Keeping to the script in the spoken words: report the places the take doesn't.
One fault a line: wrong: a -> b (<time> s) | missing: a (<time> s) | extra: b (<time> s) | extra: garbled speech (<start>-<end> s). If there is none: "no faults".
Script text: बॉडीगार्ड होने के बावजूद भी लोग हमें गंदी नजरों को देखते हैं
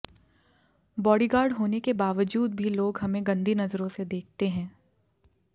wrong: को -> से (3.9 s)